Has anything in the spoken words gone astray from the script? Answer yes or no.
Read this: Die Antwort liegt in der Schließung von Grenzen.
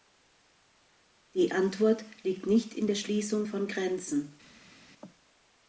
yes